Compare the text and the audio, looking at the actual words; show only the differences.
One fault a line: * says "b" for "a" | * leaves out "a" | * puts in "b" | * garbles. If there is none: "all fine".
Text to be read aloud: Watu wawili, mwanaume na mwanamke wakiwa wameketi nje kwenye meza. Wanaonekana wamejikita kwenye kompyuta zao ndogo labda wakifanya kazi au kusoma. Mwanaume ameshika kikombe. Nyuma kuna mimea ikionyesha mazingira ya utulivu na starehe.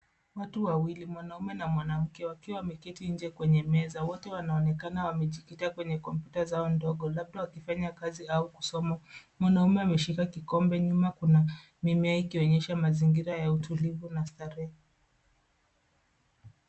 * puts in "Wote"